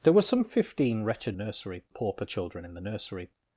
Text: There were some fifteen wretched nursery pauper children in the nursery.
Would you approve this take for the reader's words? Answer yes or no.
yes